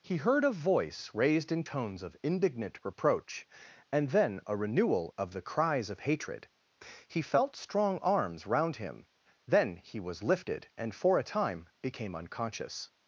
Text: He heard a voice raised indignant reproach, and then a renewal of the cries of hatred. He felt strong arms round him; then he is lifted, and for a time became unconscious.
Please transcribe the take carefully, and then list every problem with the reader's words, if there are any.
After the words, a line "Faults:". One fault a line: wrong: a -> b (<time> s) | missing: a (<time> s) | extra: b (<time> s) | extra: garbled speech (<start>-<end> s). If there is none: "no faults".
He heard a voice raised in tones of indignant reproach, and then a renewal of the cries of hatred. He felt strong arms round him; then he was lifted, and for a time became unconscious.
Faults:
extra: in tones of (1.5 s)
wrong: is -> was (10.0 s)